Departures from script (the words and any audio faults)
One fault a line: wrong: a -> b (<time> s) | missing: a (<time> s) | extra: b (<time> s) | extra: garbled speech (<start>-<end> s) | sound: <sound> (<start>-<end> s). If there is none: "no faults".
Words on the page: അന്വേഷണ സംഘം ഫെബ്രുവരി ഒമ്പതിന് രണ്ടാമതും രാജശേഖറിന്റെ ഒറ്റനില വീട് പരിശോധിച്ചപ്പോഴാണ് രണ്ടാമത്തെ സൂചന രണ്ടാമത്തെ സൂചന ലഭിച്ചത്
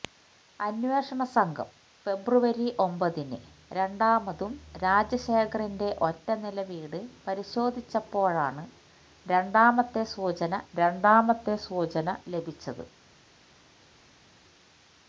no faults